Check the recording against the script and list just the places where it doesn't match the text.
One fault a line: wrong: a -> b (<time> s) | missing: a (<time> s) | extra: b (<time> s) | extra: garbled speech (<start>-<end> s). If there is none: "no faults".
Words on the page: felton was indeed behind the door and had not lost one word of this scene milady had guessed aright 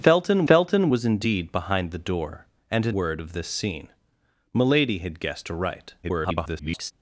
extra: felton (0.4 s)
missing: not lost one (3.0 s)
extra: garbled speech (6.0-6.9 s)